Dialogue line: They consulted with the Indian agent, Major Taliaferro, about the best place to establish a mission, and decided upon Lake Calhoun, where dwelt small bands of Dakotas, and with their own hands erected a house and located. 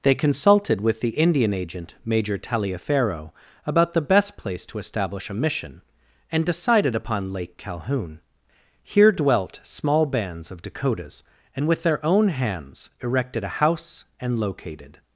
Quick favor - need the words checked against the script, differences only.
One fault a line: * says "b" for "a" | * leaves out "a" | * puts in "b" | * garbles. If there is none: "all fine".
* says "here" for "where"